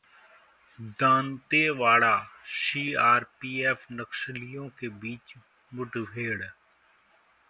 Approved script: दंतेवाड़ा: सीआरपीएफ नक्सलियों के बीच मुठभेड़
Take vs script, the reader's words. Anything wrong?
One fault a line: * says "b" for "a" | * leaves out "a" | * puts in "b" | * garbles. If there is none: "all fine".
all fine